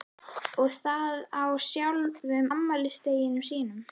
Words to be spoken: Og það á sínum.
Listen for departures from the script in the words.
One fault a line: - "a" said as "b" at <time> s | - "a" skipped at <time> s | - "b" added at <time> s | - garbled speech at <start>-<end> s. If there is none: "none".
- "sjálfum afmælisdeginum" added at 1.7 s